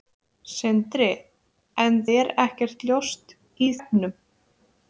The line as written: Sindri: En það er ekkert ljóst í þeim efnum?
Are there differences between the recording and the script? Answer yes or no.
yes